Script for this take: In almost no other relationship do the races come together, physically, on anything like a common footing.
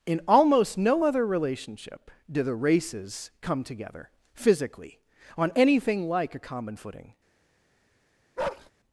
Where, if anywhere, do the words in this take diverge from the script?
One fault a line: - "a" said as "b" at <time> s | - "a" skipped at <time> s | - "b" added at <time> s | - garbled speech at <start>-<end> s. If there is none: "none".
none